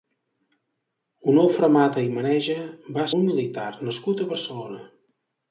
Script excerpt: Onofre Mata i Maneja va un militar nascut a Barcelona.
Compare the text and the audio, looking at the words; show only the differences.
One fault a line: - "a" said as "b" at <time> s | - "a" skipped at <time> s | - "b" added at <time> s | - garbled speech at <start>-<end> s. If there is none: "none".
none